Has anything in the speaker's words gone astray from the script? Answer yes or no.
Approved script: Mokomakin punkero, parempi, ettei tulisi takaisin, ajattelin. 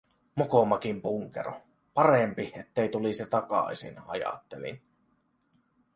no